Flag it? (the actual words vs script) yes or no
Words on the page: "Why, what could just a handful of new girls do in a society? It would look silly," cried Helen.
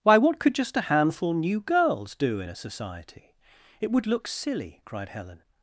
yes